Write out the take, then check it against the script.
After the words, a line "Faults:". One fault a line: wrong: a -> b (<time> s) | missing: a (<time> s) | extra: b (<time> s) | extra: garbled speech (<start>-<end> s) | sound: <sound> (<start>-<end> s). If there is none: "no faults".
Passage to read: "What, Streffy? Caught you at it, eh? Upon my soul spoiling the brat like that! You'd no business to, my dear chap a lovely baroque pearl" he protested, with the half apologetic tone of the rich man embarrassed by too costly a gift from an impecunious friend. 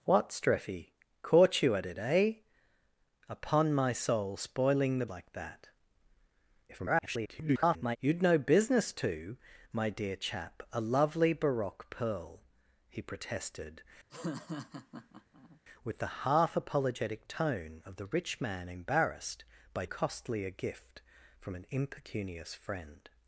"What, Streffy? Caught you at it, eh? Upon my soul spoiling the like that! [garbled] You'd no business to, my dear chap a lovely baroque pearl" he protested, with the half apologetic tone of the rich man embarrassed by costly a gift from an impecunious friend.
Faults:
missing: brat (5.0 s)
extra: garbled speech (6.7-8.0 s)
sound: laugh (14.1-15.6 s)
missing: too (19.9 s)